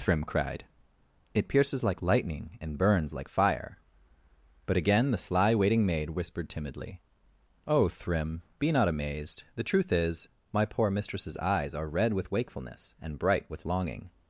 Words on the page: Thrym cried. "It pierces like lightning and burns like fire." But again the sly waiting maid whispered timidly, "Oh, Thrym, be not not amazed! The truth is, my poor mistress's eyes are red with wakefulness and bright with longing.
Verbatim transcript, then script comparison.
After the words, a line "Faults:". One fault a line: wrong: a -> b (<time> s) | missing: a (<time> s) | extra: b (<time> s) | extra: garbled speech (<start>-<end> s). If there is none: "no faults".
Thrym cried. "It pierces like lightning and burns like fire." But again the sly waiting maid whispered timidly, "Oh, Thrym, be not amazed! The truth is, my poor mistress's eyes are red with wakefulness and bright with longing.
Faults:
missing: not (8.9 s)